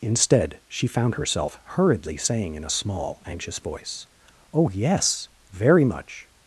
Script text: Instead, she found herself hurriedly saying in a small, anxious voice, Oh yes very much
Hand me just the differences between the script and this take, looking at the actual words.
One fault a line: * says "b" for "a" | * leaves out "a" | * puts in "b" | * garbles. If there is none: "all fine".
all fine